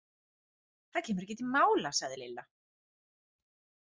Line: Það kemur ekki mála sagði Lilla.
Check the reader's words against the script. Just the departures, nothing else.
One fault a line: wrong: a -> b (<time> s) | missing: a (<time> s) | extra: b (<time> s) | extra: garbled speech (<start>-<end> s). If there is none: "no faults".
extra: til (1.4 s)